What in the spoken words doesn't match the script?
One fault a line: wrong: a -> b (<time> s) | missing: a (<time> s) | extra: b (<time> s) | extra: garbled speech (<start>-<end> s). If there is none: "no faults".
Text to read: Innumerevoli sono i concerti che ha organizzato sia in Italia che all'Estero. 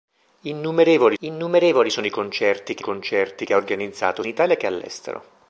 extra: innumerevoli (1.2 s)
extra: concerti che (2.8 s)
missing: sia (4.2 s)